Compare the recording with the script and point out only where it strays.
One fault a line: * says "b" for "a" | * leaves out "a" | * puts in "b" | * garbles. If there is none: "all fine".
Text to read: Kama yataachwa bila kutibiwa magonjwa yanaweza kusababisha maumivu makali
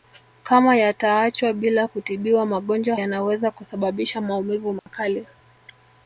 all fine